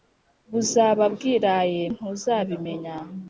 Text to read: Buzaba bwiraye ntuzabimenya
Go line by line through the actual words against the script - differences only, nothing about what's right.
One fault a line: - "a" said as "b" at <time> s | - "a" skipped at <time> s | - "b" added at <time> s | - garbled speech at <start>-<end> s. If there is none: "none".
none